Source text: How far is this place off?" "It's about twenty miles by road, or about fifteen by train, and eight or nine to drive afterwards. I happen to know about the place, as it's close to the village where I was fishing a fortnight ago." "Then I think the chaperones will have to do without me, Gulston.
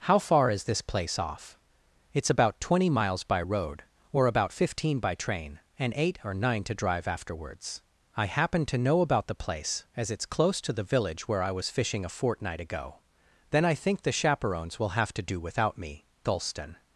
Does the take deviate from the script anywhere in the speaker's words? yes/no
no